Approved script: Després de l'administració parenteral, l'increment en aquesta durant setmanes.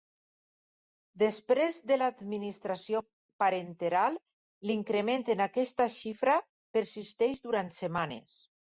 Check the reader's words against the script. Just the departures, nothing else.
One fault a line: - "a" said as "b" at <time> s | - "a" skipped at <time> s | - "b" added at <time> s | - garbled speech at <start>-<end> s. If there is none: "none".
- "xifra persisteix" added at 6.0 s